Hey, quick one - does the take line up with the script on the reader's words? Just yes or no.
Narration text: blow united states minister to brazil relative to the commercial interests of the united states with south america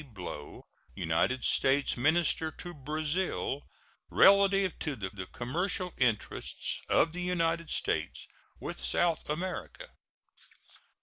no